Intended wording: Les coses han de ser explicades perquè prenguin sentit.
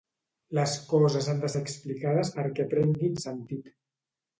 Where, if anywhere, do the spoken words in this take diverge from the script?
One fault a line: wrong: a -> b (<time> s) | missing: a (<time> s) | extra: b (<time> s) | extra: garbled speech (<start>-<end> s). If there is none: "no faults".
no faults